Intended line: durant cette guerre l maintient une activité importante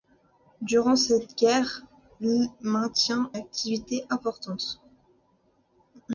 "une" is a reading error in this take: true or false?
true